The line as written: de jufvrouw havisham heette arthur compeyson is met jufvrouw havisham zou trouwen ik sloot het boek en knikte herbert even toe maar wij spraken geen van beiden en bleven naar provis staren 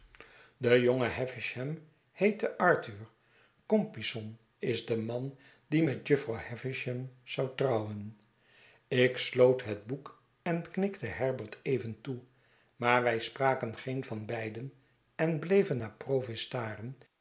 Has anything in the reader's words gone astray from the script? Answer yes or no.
yes